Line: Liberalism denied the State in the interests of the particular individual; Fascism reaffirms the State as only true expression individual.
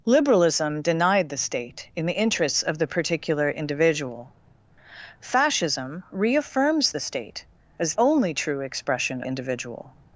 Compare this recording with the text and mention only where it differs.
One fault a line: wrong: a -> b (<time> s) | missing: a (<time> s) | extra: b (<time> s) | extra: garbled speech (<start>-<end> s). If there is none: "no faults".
no faults